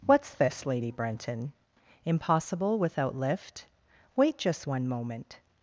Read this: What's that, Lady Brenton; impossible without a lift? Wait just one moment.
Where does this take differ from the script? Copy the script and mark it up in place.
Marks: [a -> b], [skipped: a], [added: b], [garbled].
What's [that, -> this] Lady Brenton; impossible without [skipped: a] lift? Wait just one moment.